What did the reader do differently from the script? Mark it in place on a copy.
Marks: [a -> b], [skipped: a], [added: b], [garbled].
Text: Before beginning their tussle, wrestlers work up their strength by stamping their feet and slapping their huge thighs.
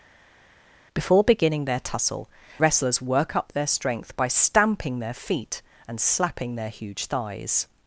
Before beginning their tussle, wrestlers work up their strength by stamping their feet and slapping their huge thighs.